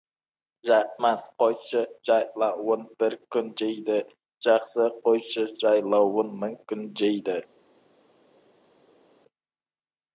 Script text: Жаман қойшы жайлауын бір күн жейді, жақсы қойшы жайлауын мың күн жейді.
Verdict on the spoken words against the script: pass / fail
pass